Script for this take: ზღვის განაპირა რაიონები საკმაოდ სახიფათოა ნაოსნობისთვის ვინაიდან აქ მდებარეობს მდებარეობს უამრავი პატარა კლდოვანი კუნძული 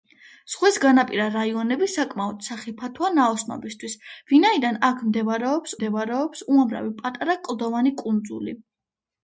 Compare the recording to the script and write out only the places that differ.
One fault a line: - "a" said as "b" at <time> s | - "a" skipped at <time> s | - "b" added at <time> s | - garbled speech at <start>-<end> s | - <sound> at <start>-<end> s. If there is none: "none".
none